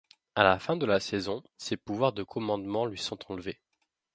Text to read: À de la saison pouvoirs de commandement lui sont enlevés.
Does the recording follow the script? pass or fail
fail